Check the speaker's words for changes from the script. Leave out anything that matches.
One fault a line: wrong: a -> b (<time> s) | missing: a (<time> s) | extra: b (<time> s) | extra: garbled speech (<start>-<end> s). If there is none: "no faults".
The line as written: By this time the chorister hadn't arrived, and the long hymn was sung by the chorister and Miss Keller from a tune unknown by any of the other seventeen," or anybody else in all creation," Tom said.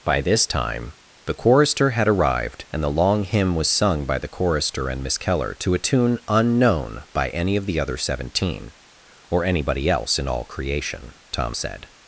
wrong: hadn't -> had (1.9 s)
wrong: from -> to (5.6 s)